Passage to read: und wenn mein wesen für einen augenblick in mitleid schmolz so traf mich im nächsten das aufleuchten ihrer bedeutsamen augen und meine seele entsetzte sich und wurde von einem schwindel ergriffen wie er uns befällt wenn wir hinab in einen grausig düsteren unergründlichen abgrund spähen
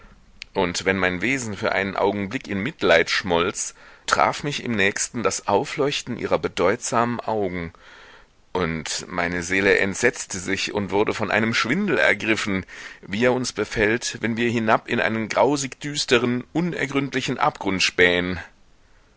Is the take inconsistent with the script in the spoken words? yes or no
yes